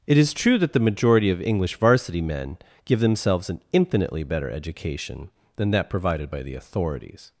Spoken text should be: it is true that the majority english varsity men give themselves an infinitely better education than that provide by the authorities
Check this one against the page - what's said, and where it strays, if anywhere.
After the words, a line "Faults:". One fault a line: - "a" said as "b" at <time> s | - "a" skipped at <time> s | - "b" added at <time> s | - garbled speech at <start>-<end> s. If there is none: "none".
it is true that the majority of english varsity men give themselves an infinitely better education than that provided by the authorities
Faults:
- "of" added at 1.3 s
- "provide" said as "provided" at 5.9 s